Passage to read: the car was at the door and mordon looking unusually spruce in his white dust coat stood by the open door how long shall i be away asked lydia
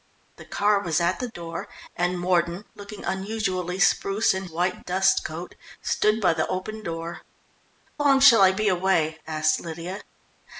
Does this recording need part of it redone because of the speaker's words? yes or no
yes